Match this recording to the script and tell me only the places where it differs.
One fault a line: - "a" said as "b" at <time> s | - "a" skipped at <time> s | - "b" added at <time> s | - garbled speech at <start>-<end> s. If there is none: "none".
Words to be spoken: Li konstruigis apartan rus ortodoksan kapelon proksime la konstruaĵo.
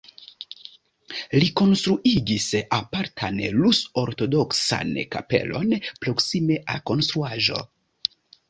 none